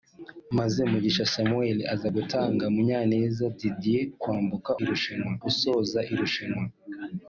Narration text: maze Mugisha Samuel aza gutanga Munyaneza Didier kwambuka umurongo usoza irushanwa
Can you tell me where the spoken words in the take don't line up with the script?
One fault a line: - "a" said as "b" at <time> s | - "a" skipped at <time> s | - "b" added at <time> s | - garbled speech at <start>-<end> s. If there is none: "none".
- "umurongo" said as "irushanwa" at 4.8 s